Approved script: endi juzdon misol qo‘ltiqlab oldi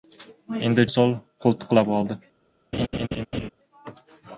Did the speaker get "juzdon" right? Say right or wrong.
wrong